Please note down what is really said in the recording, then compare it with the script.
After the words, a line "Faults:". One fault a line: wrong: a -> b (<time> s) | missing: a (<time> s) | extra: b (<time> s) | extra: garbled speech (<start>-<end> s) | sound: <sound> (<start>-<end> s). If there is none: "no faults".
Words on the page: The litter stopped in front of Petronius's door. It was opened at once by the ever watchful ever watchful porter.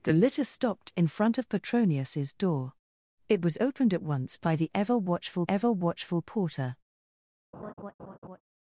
The litter stopped in front of Petronius's door. It was opened at once by the ever watchful ever watchful porter.
Faults:
sound: laugh (7.5-8.4 s)